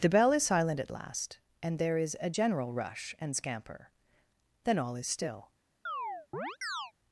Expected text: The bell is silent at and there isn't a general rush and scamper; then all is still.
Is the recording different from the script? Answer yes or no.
yes